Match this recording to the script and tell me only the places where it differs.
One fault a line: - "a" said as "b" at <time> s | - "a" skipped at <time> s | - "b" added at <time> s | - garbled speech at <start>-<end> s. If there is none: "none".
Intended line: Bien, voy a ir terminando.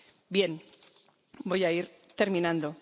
none